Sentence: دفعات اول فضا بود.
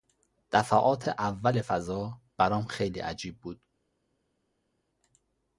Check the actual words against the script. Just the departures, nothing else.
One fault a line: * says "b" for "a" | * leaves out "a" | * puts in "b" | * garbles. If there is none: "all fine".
* puts in "برام خیلی عجیب"